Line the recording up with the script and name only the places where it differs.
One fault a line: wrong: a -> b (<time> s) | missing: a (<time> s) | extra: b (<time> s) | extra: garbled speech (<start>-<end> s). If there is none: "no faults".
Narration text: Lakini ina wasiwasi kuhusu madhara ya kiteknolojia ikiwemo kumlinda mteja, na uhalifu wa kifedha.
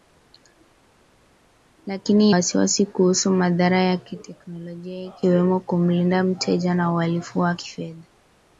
missing: ina (2.3 s)